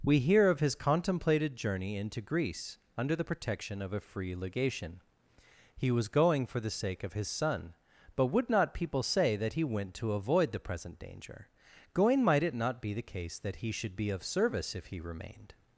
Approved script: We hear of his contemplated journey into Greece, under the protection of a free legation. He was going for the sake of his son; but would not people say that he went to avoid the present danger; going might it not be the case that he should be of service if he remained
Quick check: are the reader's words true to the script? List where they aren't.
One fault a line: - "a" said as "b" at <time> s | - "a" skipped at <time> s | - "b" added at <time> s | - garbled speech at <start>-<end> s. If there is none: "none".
none